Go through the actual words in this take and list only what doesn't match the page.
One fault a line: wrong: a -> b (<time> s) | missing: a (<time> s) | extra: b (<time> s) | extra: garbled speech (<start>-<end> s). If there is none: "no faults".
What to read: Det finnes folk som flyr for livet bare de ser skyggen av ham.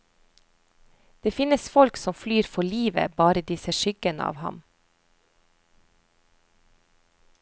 no faults